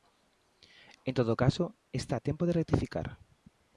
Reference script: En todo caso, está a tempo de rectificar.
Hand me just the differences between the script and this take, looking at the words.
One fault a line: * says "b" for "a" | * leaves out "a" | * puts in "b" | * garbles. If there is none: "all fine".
all fine